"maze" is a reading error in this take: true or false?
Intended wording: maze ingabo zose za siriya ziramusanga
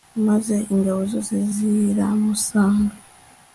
false